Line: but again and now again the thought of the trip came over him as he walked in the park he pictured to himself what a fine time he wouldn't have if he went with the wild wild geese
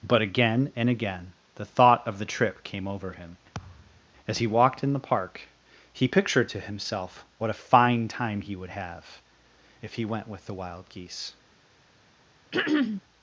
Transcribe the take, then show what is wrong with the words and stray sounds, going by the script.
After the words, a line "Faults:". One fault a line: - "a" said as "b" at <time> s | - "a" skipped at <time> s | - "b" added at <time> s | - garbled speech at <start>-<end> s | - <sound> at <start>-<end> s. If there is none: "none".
but again and again the thought of the trip came over him as he walked in the park he pictured to himself what a fine time he would have if he went with the wild geese
Faults:
- "now" skipped at 0.9 s
- thud at 3.5-4.1 s
- "wouldn't" said as "would" at 8.5 s
- "wild" skipped at 10.9 s
- throat clearing at 12.5-13.0 s